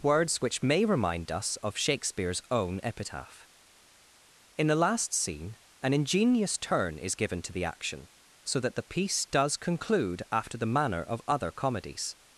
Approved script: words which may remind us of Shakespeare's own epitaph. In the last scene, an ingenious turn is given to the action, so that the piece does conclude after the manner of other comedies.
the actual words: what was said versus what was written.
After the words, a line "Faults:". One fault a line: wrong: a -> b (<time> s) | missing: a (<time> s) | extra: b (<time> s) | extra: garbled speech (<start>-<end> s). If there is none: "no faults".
words which may remind us of Shakespeare's own epitaph. In the last scene, an ingenious turn is given to the action, so that the piece does conclude after the manner of other comedies.
Faults:
no faults